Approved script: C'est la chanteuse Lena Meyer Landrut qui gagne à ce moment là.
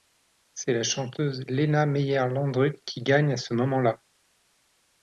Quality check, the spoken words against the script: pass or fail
pass